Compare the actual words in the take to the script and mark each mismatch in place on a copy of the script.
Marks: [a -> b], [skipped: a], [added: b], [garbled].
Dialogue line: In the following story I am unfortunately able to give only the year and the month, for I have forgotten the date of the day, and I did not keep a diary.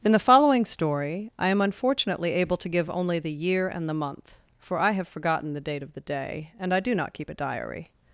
In the following story I am unfortunately able to give only the year and the month, for I have forgotten the date of the day, and I [did -> do] not keep a diary.